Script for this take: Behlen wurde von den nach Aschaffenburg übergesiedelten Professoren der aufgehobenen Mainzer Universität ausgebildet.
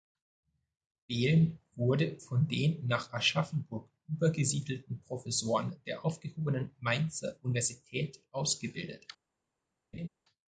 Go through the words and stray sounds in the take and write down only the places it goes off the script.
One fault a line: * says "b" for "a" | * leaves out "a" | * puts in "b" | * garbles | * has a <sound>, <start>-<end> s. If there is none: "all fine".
* has a laugh, 9.9-10.1 s